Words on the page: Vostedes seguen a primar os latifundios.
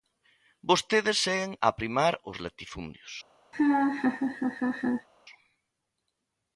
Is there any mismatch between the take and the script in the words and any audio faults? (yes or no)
yes